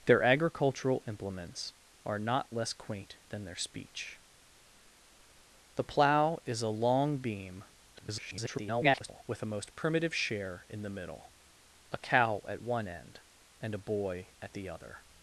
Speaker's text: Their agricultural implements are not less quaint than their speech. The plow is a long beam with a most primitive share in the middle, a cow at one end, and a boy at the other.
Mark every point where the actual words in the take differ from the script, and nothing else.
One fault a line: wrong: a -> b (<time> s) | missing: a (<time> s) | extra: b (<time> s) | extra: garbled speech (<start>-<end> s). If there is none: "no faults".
extra: garbled speech (7.9-9.2 s)